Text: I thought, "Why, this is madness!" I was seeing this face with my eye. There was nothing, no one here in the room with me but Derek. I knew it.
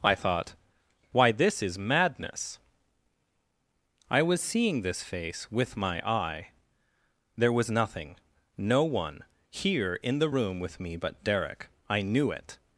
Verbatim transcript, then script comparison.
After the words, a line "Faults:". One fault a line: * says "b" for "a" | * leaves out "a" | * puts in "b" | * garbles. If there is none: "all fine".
I thought, "Why, this is madness!" I was seeing this face with my eye. There was nothing, no one here in the room with me but Derek. I knew it.
Faults:
all fine